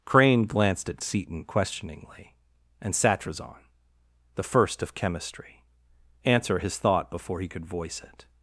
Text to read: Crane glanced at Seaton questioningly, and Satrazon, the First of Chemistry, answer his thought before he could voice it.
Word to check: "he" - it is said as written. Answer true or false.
true